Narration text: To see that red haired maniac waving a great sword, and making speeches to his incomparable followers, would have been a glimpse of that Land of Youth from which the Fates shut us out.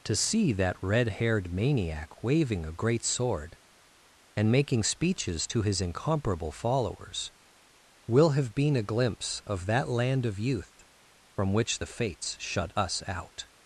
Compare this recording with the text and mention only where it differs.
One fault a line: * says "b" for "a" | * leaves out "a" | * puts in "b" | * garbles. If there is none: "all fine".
* says "will" for "would"